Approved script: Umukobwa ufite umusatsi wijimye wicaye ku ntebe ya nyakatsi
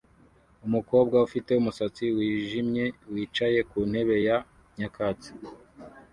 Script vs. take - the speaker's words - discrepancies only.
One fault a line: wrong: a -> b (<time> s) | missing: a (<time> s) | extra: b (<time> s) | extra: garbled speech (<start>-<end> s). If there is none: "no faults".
no faults